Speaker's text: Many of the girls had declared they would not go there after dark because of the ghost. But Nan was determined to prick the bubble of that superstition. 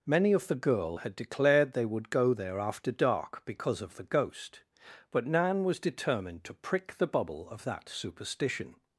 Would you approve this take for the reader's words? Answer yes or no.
no